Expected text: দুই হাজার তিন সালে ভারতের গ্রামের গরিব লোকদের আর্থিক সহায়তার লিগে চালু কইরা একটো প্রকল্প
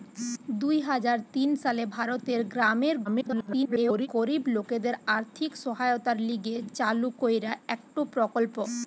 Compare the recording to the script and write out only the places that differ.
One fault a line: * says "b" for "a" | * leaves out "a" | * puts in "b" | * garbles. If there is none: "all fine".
* garbles